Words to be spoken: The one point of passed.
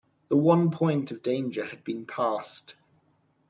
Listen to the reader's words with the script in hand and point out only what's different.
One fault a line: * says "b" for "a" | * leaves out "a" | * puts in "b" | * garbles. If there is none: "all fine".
* puts in "danger had been"